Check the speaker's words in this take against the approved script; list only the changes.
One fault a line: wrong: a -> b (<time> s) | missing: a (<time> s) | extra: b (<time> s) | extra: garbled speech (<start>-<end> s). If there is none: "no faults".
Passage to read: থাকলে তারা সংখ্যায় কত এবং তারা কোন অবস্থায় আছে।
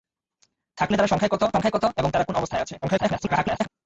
extra: সংখ্যায় কত (1.5 s)
extra: garbled speech (2.8-3.7 s)